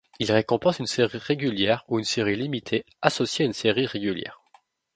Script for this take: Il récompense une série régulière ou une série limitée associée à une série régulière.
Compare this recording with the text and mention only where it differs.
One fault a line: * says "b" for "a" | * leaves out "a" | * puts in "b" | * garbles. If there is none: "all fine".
all fine